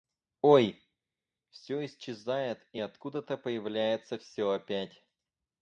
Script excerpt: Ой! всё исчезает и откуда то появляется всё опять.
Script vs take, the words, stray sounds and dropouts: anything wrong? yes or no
no